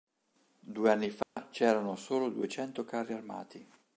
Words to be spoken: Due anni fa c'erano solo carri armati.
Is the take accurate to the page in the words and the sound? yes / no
no